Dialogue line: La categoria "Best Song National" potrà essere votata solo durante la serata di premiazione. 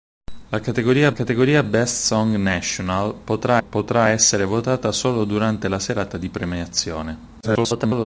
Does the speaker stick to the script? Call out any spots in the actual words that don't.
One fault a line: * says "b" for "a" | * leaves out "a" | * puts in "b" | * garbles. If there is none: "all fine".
* puts in "categoria"
* puts in "potrà"
* garbles